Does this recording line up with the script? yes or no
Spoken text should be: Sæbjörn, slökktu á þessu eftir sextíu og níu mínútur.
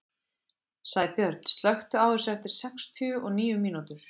yes